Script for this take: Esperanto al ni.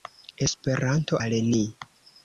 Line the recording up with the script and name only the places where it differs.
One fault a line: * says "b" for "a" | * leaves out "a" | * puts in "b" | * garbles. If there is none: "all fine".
all fine